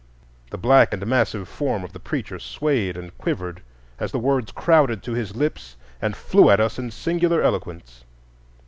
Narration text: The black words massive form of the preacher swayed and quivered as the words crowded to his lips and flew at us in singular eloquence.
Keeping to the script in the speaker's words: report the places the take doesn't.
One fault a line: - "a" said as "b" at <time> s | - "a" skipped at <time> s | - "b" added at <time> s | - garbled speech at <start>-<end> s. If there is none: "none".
- "words" said as "and" at 0.9 s